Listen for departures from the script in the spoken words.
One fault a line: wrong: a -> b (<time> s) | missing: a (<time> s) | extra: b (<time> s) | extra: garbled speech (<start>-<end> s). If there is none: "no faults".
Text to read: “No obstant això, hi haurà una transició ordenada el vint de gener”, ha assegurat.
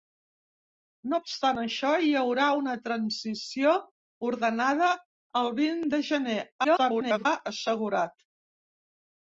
extra: garbled speech (6.6-7.3 s)